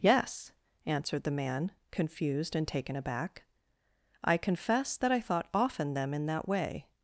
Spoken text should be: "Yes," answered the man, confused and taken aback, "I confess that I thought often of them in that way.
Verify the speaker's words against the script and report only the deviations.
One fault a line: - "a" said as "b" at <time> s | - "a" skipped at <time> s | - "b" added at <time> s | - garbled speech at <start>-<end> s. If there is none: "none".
- "of" skipped at 5.9 s